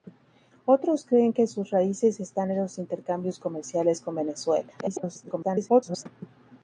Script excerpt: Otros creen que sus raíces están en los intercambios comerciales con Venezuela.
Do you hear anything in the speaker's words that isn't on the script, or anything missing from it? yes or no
yes